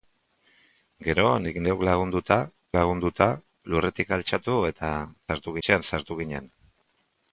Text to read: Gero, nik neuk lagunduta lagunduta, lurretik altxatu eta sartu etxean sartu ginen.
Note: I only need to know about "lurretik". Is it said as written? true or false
true